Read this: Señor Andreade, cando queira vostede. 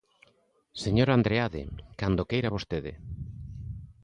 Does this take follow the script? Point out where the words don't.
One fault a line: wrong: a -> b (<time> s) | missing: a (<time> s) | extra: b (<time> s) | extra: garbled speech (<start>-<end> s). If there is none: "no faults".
no faults